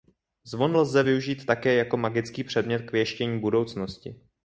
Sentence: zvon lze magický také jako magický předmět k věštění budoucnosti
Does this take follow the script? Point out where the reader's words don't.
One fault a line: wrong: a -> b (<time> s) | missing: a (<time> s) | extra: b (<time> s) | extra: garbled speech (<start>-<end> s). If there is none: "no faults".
wrong: magický -> využít (1.0 s)